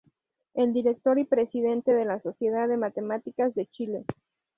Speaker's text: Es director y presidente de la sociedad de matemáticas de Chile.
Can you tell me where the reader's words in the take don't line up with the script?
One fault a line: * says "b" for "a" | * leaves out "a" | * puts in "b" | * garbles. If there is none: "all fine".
all fine